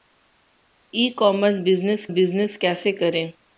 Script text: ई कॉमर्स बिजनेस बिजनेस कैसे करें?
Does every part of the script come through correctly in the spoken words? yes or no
yes